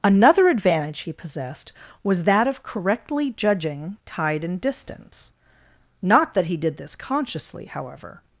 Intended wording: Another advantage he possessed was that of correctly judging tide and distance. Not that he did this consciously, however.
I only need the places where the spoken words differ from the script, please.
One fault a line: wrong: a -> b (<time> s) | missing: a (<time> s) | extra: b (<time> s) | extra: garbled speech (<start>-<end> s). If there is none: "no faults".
no faults